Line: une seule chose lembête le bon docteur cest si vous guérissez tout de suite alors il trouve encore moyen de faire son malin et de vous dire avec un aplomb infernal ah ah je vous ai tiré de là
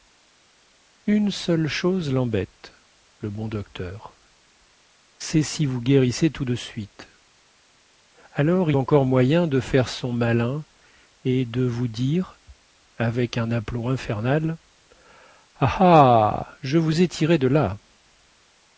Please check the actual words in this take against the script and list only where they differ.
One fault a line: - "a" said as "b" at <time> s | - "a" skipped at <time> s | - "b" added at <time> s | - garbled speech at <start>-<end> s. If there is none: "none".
- "il trouve" skipped at 8.7 s